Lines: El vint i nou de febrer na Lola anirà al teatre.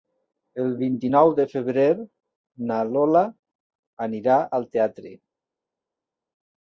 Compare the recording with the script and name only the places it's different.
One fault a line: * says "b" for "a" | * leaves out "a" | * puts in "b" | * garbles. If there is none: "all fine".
all fine